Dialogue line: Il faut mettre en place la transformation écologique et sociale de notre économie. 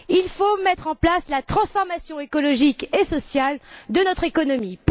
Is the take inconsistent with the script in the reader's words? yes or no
no